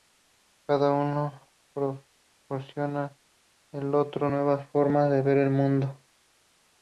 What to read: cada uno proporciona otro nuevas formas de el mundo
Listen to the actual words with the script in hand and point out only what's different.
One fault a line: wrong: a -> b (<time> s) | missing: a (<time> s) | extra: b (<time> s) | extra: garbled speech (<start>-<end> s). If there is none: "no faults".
extra: al (3.7 s)
extra: ver (5.2 s)